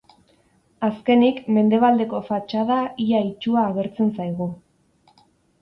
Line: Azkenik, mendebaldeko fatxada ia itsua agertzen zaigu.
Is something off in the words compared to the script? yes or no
no